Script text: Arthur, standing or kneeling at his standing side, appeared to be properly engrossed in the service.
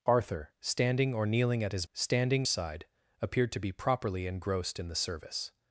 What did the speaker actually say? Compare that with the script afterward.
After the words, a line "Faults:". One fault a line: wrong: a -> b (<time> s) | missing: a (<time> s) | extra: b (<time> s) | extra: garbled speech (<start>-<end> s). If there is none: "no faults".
Arthur, standing or kneeling at his standing side, appeared to be properly engrossed in the service.
Faults:
no faults